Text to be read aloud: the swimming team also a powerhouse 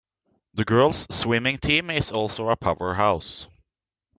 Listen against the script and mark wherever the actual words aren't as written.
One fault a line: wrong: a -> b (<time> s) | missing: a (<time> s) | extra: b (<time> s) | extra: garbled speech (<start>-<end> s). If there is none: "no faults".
extra: girls (0.6 s)
extra: is (1.9 s)